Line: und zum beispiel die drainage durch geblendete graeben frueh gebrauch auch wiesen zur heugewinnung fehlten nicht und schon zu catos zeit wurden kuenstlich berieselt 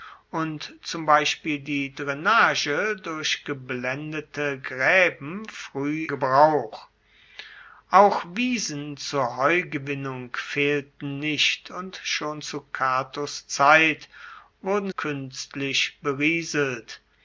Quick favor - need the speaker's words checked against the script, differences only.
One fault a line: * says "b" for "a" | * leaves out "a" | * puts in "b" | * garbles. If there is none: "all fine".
all fine